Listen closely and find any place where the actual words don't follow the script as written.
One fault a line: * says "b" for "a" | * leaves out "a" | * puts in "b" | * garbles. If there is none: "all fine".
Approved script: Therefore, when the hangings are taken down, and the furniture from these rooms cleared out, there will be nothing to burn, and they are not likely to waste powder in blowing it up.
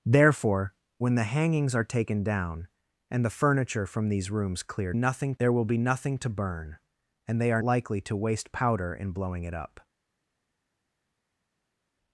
* says "nothing" for "out"
* leaves out "not"